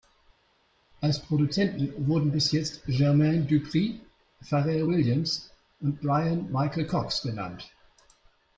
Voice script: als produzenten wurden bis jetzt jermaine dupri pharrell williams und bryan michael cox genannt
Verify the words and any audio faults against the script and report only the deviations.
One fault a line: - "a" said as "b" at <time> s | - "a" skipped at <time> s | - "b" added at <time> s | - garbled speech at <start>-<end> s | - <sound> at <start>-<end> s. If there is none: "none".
none